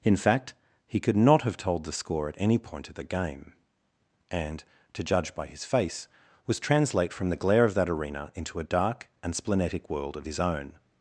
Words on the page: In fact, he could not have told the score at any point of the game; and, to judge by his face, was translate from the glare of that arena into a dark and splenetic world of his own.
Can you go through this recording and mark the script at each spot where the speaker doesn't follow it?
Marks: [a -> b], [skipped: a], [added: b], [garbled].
In fact, he could not have told the score at any point of the game; and, to judge by his face, was translate from the glare of that arena into a dark and splenetic world of his own.